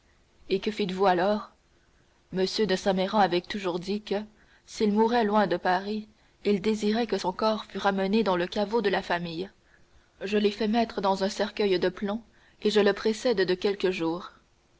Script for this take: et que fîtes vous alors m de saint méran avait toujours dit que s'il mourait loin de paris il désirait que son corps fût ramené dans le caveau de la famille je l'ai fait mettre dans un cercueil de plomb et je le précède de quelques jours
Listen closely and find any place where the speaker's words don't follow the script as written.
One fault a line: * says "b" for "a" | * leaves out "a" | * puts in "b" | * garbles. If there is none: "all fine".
all fine